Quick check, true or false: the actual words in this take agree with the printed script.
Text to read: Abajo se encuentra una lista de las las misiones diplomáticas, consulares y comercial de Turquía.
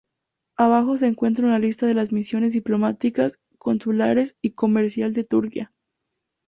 false